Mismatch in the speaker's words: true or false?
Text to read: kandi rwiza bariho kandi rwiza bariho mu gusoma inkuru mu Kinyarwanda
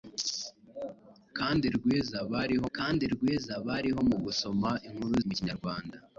false